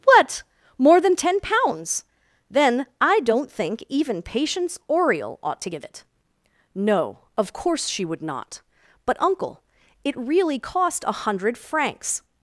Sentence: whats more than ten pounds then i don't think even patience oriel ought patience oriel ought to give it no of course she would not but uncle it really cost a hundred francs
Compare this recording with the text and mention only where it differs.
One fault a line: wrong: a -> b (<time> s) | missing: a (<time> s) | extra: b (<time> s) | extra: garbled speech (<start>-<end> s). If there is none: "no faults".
wrong: whats -> what (0.0 s)
missing: patience oriel ought (5.6 s)